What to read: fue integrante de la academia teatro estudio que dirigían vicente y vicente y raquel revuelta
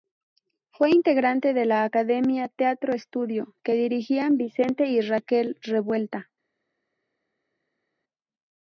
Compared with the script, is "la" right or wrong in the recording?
right